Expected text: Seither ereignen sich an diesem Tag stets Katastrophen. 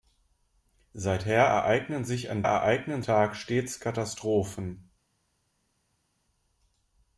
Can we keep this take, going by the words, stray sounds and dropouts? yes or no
no